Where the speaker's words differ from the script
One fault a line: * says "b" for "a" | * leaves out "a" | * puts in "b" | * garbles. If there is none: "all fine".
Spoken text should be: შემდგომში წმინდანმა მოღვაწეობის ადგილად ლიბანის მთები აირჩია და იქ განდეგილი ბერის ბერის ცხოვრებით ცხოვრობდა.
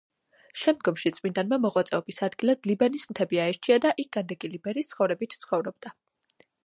* leaves out "ბერის"